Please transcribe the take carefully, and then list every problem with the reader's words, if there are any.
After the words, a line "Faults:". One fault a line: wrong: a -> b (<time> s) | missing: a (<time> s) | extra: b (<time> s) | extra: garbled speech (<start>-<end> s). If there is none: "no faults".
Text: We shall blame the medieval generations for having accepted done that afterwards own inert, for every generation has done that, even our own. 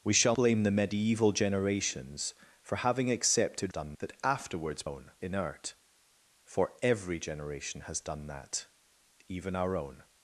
We shall blame the medieval generations for having accepted done that afterwards own inert, for every generation has done that, even our own.
Faults:
no faults